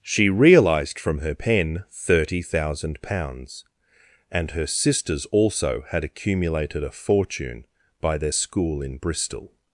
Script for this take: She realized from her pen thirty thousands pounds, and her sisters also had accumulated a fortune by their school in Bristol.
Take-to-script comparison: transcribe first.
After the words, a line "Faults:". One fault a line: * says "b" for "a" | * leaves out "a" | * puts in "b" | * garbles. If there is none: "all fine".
She realized from her pen thirty thousand pounds, and her sisters also had accumulated a fortune by their school in Bristol.
Faults:
* says "thousand" for "thousands"